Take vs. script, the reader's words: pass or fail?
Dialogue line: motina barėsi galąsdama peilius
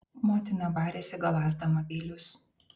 pass